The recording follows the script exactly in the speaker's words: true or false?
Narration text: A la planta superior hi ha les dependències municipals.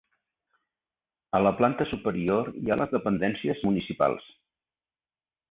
true